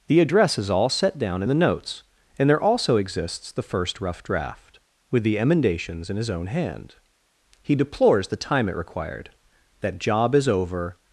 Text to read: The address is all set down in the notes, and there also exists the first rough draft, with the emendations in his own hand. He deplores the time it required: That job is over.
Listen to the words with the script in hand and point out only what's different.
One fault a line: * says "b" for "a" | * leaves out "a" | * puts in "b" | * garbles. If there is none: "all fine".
all fine